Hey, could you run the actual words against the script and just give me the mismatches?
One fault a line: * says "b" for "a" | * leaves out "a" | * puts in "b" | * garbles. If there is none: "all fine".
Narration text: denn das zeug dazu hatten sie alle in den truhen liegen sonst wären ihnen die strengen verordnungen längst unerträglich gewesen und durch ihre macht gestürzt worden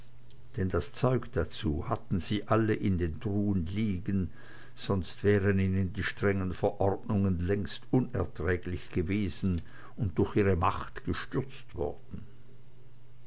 all fine